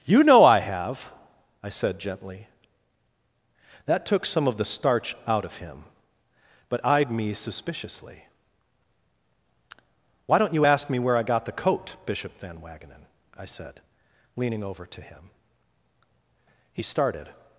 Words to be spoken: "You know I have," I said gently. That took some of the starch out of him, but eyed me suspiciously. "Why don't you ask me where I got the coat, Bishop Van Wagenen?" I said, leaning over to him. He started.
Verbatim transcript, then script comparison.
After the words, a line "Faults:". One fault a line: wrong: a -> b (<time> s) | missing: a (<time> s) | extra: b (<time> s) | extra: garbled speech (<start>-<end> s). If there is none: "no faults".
"You know I have," I said gently. That took some of the starch out of him, but eyed me suspiciously. "Why don't you ask me where I got the coat, Bishop Van Wagenen?" I said, leaning over to him. He started.
Faults:
no faults